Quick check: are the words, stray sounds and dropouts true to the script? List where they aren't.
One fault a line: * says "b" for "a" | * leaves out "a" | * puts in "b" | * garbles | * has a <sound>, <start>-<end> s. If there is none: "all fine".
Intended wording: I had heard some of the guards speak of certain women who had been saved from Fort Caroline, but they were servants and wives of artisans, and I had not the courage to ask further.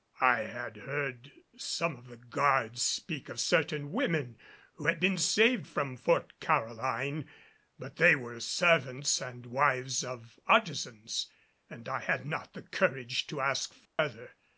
* has a dropout, 13.9-14.0 s